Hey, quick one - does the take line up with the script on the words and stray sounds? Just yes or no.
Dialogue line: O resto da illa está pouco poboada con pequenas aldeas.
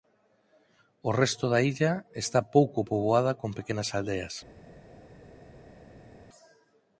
yes